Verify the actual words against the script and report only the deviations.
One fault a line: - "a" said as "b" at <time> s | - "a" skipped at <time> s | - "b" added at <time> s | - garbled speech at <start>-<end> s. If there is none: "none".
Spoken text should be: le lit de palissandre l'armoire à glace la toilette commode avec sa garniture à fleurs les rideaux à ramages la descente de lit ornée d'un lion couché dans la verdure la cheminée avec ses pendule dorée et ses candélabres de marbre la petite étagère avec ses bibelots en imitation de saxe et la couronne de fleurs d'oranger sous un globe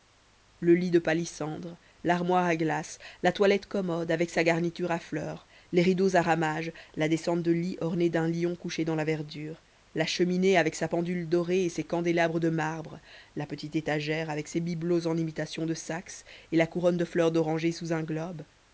- "ses" said as "sa" at 10.7 s